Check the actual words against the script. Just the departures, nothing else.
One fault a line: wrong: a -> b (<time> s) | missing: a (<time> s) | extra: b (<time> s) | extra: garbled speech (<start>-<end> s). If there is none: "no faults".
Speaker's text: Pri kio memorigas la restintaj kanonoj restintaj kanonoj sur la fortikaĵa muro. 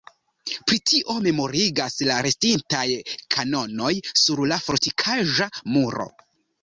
wrong: kio -> tio (0.9 s)
missing: restintaj kanonoj (3.9 s)